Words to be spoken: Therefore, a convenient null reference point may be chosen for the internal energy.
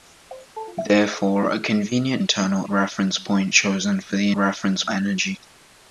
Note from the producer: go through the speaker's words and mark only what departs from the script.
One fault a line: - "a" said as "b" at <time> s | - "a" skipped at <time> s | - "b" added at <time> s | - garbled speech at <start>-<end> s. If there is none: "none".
- "null" said as "internal" at 2.2 s
- "may be" skipped at 3.5 s
- "internal" said as "reference" at 4.3 s